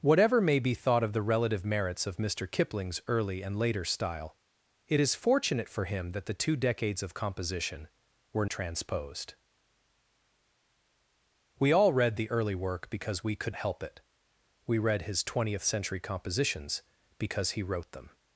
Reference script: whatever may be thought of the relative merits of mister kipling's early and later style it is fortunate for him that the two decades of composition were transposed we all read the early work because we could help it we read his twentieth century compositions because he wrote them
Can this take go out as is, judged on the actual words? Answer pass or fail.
pass